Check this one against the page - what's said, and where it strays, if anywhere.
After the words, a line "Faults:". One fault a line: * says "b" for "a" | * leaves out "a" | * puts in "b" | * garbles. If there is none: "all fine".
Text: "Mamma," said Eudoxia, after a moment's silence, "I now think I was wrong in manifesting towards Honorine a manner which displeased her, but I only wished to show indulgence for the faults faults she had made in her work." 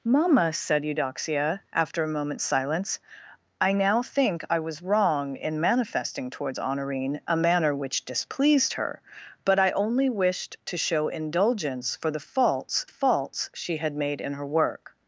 "Mamma," said Eudoxia, after a moment's silence, "I now think I was wrong in manifesting towards Honorine a manner which displeased her, but I only wished to show indulgence for the faults faults she had made in her work."
Faults:
all fine